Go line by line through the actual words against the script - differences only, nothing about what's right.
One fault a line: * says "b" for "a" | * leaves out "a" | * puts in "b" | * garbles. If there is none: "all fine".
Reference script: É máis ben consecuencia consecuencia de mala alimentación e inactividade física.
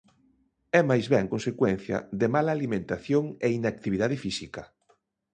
* leaves out "consecuencia"